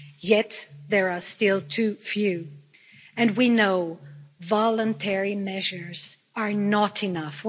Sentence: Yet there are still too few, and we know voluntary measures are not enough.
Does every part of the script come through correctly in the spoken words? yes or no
yes